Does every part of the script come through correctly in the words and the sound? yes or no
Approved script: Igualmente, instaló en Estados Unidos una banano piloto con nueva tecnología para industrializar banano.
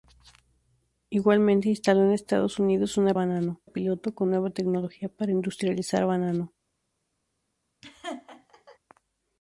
no